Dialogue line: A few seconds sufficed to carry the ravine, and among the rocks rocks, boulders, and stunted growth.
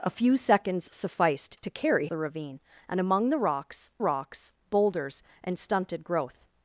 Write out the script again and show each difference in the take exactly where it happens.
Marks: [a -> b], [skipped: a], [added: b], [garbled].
A few seconds sufficed to carry the ravine, and among the rocks rocks, boulders, and stunted growth.